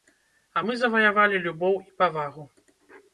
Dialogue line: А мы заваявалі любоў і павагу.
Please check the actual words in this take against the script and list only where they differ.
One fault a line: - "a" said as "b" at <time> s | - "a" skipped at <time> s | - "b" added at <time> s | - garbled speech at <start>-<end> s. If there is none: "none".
none